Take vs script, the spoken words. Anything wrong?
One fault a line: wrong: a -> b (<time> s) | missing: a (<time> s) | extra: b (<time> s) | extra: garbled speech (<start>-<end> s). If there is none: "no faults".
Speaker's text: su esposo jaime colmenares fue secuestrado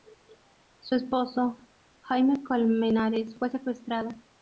no faults